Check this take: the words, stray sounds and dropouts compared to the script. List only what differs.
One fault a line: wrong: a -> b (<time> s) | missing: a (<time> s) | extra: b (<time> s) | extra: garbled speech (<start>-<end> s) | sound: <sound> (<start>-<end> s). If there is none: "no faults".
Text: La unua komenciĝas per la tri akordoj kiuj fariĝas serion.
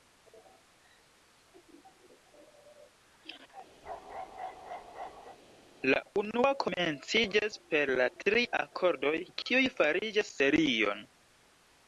sound: bark (3.8-5.4 s)